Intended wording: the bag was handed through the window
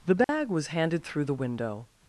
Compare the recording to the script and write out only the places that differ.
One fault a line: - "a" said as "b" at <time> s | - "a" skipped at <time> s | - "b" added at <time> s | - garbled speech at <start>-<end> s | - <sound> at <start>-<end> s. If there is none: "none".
- dropout at 0.2-0.3 s